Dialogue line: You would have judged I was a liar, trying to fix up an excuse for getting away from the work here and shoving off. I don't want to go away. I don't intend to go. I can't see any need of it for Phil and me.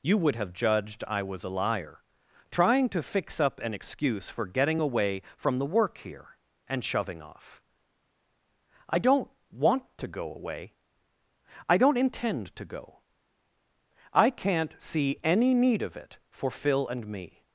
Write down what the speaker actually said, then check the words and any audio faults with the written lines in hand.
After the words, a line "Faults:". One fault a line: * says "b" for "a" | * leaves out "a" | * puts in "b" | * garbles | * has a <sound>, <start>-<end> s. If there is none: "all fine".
You would have judged I was a liar, trying to fix up an excuse for getting away from the work here and shoving off. I don't want to go away. I don't intend to go. I can't see any need of it for Phil and me.
Faults:
all fine